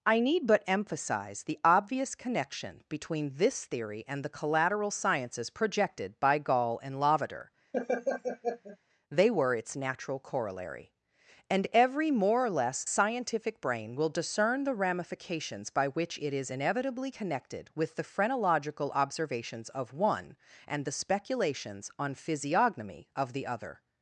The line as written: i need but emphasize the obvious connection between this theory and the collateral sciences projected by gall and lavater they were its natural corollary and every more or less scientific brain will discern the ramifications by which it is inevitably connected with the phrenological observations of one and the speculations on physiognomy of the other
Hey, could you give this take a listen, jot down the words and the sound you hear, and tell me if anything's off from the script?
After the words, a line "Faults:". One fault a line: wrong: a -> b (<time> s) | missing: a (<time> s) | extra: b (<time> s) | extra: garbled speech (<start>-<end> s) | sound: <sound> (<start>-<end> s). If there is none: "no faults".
i need but emphasize the obvious connection between this theory and the collateral sciences projected by gall and lavater they were its natural corollary and every more or less scientific brain will discern the ramifications by which it is inevitably connected with the phrenological observations of one and the speculations on physiognomy of the other
Faults:
sound: laugh (7.7-8.8 s)